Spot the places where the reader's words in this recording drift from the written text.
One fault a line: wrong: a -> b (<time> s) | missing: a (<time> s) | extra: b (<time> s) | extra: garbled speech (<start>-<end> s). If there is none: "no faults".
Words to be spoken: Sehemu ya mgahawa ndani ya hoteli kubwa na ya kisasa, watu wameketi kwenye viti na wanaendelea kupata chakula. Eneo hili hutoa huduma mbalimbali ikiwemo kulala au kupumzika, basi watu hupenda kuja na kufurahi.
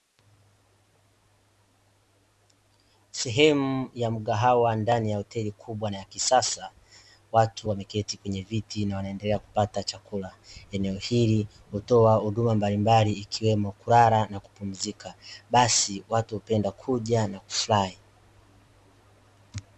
wrong: au -> na (14.3 s)